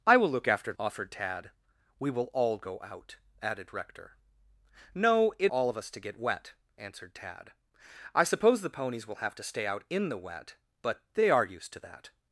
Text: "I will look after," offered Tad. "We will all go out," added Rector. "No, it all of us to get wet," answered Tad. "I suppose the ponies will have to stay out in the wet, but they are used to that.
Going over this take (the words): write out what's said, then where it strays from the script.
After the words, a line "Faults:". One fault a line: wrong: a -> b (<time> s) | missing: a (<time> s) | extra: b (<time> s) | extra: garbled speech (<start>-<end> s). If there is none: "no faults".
"I will look after," offered Tad. "We will all go out," added Rector. "No, it all of us to get wet," answered Tad. "I suppose the ponies will have to stay out in the wet, but they are used to that.
Faults:
no faults